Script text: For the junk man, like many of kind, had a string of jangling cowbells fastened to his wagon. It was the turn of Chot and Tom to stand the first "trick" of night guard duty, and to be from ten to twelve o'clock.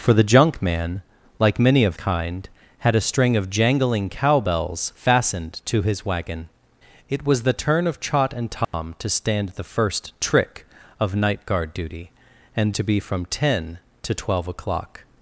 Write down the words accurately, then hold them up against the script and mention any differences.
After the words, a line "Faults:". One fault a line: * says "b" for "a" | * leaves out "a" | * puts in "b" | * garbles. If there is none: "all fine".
For the junk man, like many of kind, had a string of jangling cowbells fastened to his wagon. It was the turn of Chot and Tom to stand the first "trick" of night guard duty, and to be from ten to twelve o'clock.
Faults:
all fine